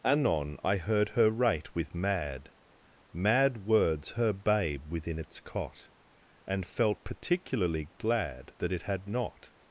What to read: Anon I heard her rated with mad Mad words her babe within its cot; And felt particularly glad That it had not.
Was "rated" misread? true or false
true